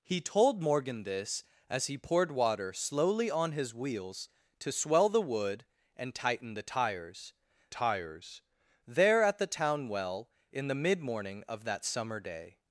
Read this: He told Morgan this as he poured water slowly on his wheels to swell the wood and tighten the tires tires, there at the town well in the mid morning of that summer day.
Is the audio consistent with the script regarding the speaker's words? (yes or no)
yes